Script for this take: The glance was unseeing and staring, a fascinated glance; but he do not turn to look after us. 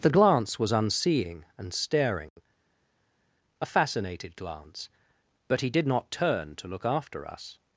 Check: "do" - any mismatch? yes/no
yes